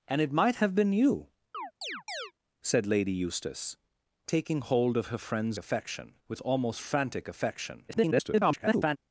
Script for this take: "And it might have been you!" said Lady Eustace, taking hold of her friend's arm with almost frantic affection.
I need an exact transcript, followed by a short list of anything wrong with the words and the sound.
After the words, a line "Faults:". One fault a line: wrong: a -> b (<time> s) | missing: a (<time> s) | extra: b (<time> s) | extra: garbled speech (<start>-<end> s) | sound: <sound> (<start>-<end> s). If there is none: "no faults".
"And it might have been you!" said Lady Eustace, taking hold of her friend's affection with almost frantic affection. [garbled]
Faults:
sound: chirp (1.5-2.3 s)
wrong: arm -> affection (5.6 s)
extra: garbled speech (7.9-9.0 s)